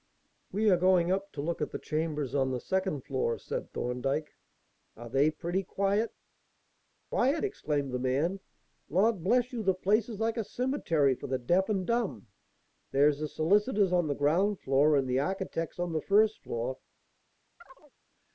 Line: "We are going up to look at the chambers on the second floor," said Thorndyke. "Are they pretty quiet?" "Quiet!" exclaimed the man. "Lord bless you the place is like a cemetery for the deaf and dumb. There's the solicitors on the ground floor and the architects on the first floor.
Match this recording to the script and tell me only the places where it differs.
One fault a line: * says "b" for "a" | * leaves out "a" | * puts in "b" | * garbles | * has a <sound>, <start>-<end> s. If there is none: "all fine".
* has a chirp, 17.6-17.9 s